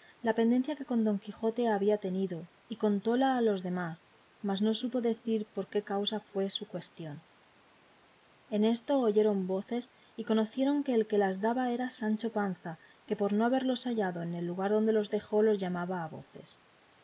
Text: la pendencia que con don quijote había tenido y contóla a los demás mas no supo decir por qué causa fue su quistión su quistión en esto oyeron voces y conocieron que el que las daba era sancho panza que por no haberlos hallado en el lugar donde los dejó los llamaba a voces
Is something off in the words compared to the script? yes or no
yes